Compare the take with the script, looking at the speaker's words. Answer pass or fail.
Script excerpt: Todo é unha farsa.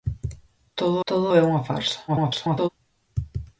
fail